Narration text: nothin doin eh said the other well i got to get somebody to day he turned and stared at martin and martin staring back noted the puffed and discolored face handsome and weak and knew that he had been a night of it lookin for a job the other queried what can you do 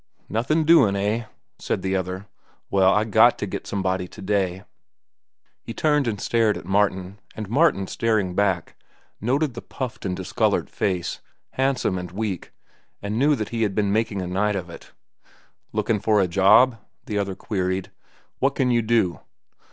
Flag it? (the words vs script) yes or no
yes